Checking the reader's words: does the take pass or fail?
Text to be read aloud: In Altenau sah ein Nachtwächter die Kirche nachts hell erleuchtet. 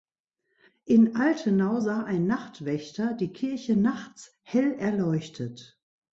pass